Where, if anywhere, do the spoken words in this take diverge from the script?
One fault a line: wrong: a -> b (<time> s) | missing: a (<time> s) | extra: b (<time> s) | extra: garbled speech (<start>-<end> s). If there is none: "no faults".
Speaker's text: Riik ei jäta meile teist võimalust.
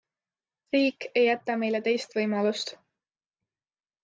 no faults